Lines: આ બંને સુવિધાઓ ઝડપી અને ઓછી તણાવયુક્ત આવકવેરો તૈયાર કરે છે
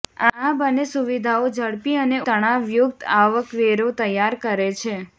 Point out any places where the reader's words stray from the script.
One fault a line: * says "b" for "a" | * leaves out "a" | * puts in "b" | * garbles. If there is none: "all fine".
* leaves out "ઓછી"